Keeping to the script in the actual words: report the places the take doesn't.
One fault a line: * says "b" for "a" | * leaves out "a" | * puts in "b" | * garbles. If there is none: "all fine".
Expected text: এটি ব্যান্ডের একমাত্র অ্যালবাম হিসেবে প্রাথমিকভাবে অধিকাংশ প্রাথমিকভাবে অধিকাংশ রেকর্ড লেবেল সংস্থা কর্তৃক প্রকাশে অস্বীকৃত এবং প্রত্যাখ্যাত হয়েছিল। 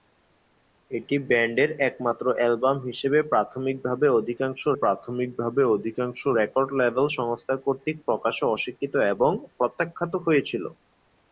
all fine